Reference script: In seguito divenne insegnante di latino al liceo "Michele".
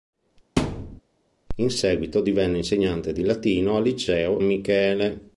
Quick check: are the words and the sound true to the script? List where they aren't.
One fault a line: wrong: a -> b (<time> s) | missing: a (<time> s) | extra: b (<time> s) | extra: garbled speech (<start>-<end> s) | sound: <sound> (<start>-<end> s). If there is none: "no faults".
sound: thud (0.6-1.0 s)